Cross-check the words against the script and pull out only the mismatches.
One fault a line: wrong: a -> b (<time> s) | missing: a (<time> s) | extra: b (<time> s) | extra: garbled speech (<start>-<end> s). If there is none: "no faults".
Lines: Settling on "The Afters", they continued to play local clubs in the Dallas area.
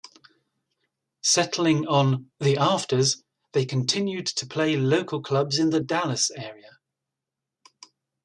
no faults